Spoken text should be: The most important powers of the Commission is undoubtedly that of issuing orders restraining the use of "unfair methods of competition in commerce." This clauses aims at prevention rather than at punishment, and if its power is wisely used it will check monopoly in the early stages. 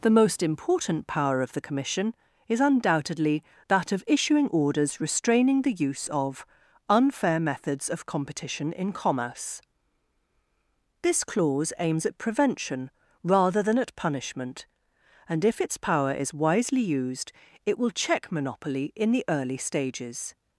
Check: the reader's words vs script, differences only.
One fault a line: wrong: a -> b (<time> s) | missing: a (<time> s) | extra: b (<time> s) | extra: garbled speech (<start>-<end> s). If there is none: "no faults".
wrong: powers -> power (1.1 s)
wrong: clauses -> clause (11.2 s)